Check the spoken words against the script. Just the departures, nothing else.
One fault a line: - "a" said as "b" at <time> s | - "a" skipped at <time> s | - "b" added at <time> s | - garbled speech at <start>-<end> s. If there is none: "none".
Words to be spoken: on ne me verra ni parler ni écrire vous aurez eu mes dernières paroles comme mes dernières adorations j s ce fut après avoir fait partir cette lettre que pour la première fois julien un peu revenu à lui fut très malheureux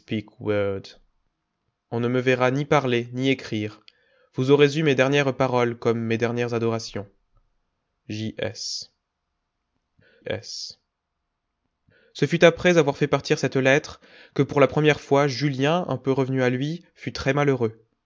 - "s" added at 10.2 s